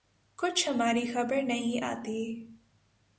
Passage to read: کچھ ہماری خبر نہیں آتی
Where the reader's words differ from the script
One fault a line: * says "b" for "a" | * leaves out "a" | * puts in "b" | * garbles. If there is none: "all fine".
all fine